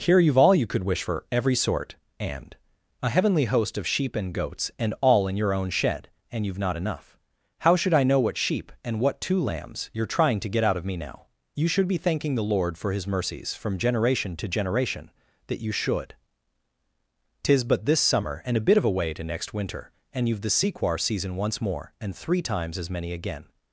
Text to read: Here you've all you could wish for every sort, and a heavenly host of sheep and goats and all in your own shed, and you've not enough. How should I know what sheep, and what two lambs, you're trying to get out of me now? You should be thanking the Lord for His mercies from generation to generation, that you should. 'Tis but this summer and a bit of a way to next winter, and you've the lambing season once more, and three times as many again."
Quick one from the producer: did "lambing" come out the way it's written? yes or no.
no